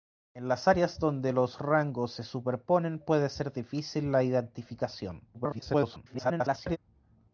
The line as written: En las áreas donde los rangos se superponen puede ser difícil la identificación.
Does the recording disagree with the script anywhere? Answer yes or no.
yes